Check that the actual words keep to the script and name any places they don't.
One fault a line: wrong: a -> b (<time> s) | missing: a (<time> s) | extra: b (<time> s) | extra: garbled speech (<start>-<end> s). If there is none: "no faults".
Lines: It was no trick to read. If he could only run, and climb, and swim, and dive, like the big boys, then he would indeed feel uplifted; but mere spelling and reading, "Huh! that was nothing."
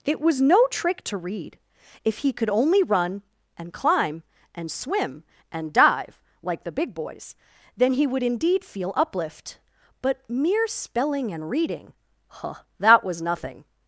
wrong: uplifted -> uplift (8.9 s)